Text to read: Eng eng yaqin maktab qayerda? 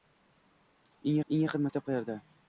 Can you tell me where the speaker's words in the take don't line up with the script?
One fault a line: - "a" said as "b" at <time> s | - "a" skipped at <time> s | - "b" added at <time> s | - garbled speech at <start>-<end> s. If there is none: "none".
none